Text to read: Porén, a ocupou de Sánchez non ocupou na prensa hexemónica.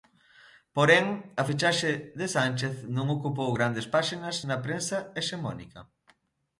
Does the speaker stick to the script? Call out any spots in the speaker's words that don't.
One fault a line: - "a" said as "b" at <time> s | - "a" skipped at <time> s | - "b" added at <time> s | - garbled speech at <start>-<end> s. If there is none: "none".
- "ocupou" said as "fichaxe" at 1.5 s
- "grandes páxinas" added at 3.6 s